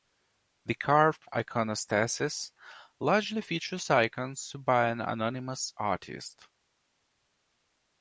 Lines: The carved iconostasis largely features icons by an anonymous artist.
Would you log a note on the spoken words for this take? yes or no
no